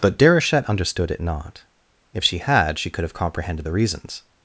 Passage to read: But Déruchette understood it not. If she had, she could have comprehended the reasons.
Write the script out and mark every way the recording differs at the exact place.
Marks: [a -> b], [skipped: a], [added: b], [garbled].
But Déruchette understood it not. If she had, she could have comprehended the reasons.